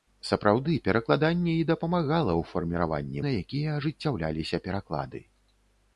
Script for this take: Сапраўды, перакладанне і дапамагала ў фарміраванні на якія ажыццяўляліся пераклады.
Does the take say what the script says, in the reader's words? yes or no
yes